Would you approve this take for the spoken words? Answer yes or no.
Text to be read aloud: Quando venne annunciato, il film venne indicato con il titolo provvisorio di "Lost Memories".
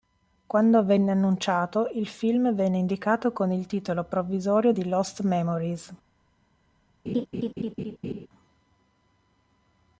yes